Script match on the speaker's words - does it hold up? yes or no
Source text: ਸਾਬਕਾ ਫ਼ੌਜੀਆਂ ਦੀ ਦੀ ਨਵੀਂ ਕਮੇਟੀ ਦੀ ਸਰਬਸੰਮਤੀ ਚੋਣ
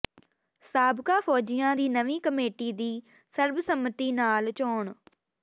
no